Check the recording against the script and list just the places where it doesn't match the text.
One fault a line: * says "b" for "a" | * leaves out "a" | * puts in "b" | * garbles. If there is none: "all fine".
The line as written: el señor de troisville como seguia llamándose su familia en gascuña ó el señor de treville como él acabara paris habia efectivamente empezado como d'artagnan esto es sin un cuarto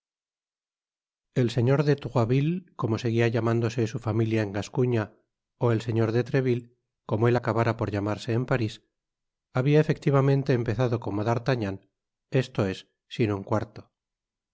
* puts in "por llamarse en"